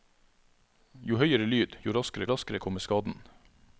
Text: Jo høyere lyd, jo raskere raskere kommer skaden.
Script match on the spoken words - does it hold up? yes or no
yes